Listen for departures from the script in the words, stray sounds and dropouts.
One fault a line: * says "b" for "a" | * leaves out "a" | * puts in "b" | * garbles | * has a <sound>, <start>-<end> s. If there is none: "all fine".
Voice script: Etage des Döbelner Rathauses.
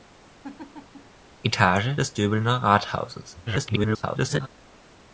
* has a laugh, 0.4-1.2 s
* garbles